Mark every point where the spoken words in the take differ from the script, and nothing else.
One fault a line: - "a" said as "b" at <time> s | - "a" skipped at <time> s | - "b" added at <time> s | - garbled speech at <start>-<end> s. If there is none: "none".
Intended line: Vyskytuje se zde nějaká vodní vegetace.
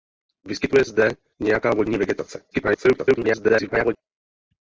- "se" skipped at 0.8 s
- garbled speech at 2.5-4.0 s